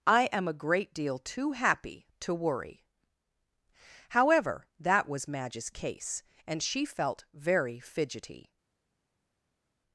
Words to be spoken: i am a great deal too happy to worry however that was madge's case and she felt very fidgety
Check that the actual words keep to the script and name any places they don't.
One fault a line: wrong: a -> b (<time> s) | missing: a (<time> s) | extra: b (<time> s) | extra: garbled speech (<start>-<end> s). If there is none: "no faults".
no faults